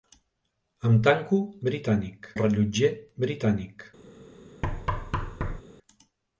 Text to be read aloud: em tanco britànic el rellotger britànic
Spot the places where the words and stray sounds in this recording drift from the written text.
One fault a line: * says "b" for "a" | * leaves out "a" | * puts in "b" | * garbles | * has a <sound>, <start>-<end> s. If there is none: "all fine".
* has a thud, 4.6-5.6 s